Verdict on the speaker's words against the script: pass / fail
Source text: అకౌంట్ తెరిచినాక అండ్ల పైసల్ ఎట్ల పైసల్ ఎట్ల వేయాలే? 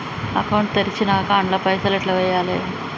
fail